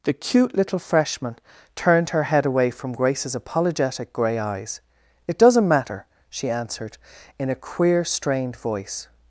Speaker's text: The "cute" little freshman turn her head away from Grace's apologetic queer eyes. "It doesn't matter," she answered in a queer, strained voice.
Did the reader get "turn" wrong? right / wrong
wrong